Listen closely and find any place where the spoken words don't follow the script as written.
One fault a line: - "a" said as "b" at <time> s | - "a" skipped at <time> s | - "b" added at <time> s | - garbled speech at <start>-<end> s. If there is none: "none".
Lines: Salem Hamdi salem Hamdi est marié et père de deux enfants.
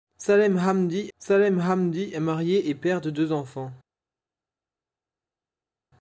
none